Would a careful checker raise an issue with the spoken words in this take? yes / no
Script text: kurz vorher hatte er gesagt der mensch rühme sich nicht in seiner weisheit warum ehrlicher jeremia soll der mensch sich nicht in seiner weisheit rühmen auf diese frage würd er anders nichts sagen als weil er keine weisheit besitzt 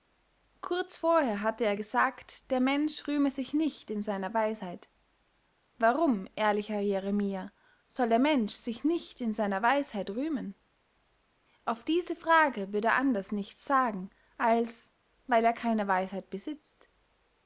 no